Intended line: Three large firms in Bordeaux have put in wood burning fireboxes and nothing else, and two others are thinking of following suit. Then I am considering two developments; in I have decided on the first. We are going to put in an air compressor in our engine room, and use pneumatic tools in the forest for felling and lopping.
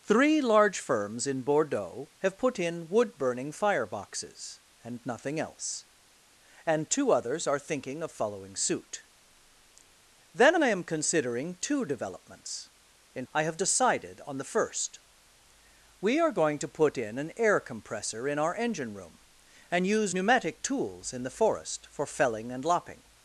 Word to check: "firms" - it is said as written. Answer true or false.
true